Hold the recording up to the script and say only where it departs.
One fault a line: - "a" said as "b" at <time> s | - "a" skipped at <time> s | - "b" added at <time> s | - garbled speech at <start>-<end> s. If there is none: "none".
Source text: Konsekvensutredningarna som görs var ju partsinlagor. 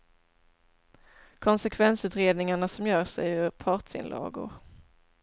- "var" said as "är" at 3.2 s